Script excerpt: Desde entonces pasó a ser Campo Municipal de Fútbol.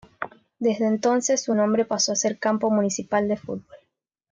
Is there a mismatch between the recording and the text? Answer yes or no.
yes